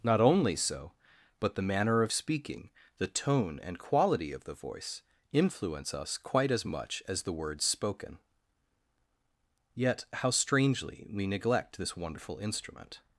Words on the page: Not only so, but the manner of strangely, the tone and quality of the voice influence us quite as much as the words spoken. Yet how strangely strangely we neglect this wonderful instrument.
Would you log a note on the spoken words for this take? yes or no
yes